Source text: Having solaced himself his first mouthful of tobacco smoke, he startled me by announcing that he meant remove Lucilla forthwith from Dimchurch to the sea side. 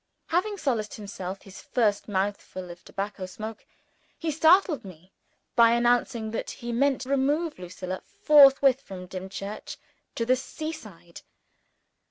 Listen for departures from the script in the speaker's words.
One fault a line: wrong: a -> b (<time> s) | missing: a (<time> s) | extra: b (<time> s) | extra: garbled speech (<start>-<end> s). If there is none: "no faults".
no faults